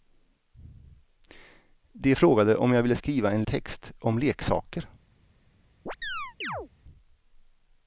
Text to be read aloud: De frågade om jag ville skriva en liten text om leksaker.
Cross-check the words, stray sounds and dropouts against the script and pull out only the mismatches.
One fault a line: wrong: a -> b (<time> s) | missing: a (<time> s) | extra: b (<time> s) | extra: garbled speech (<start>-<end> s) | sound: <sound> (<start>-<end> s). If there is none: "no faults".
missing: liten (3.4 s)
sound: chirp (5.9-6.7 s)